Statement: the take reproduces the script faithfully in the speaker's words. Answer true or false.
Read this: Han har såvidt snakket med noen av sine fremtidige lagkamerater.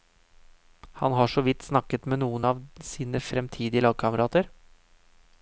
true